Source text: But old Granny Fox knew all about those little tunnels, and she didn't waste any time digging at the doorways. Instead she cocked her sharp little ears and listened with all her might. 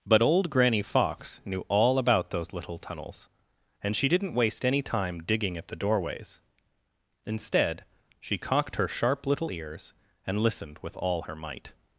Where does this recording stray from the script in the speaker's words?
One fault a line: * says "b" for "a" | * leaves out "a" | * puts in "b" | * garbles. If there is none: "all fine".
all fine